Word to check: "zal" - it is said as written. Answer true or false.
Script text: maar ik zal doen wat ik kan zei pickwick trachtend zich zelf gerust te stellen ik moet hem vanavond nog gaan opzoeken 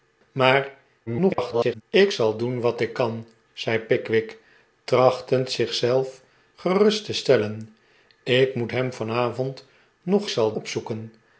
true